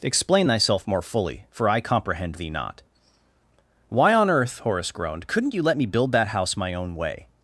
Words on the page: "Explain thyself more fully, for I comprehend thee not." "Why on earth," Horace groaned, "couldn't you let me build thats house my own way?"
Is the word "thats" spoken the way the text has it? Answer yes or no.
no